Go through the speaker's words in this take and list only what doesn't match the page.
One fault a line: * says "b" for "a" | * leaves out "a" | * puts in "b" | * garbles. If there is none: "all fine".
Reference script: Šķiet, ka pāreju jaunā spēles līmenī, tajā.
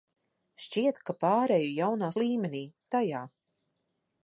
* leaves out "spēles"